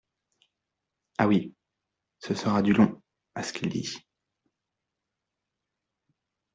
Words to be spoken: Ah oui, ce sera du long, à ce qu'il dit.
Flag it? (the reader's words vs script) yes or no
no